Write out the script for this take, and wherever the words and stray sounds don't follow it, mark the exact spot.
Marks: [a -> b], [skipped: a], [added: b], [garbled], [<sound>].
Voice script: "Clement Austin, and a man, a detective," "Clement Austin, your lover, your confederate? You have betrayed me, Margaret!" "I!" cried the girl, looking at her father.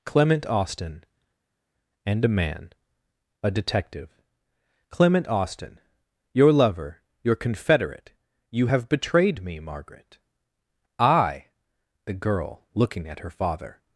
"Clement Austin, and a man, a detective," "Clement Austin, your lover, your confederate? You have betrayed me, Margaret!" "I!" [skipped: cried] the girl, looking at her father.